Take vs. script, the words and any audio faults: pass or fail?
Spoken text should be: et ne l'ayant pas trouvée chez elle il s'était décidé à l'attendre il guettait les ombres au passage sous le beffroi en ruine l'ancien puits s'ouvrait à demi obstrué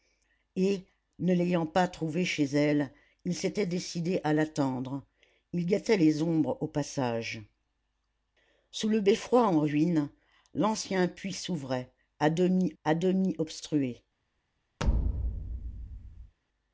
fail